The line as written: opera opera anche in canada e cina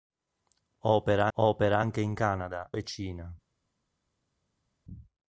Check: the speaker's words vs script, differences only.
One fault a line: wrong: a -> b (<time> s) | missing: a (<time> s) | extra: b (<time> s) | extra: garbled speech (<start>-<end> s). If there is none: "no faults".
no faults